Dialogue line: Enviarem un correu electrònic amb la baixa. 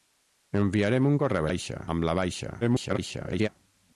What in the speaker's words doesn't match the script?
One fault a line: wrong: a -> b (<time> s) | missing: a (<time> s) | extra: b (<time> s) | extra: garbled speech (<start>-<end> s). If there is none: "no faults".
wrong: electrònic -> baixa (1.5 s)
extra: garbled speech (2.6-3.5 s)